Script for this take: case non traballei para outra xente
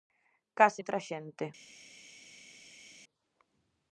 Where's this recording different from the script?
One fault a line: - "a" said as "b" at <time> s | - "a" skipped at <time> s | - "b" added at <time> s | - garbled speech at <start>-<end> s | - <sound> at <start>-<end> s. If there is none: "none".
- "non traballei para" skipped at 0.8 s